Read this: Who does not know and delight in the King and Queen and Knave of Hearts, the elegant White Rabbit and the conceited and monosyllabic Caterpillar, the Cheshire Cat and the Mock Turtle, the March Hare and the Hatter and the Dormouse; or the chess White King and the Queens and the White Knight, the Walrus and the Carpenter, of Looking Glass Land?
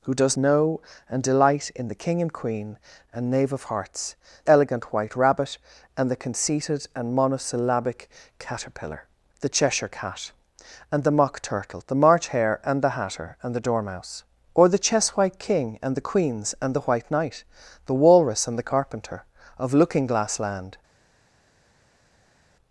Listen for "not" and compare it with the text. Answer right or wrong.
wrong